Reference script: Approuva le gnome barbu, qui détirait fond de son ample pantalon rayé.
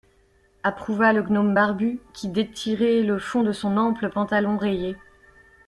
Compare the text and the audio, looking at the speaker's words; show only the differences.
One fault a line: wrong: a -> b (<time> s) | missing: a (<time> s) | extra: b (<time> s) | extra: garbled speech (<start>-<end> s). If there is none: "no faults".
extra: le (3.0 s)